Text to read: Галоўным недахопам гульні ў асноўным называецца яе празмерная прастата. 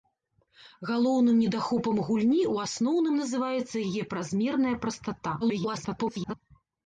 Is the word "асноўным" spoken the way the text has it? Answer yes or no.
yes